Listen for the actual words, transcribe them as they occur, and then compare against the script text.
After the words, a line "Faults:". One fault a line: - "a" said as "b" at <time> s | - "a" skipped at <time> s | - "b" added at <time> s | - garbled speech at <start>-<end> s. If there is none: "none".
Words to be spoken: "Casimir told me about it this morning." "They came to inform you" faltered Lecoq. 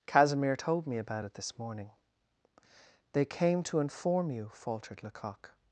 "Casimir told me about it this morning." "They came to inform you" faltered Lecoq.
Faults:
none